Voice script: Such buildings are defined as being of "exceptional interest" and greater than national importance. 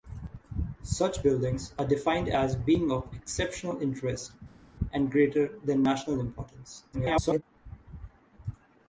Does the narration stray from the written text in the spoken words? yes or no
yes